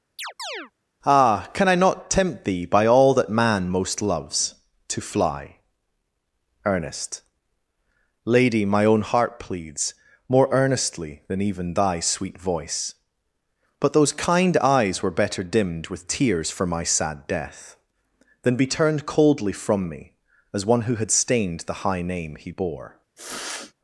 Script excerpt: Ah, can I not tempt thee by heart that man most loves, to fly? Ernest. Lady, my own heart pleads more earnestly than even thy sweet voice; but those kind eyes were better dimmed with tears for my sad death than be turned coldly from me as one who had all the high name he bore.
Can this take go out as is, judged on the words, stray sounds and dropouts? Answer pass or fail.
fail